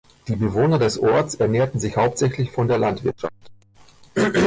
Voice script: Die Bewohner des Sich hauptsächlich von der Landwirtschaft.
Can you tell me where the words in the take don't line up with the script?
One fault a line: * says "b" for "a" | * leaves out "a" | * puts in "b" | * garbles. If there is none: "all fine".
* puts in "Orts ernährten"